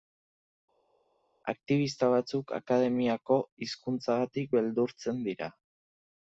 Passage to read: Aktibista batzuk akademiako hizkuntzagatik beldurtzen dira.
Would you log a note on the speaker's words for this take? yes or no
no